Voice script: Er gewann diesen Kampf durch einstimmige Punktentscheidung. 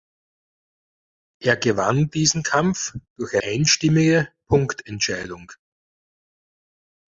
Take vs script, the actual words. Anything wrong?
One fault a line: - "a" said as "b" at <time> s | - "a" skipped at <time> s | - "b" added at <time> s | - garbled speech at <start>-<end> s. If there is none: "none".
none